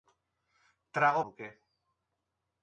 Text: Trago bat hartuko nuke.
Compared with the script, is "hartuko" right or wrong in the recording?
wrong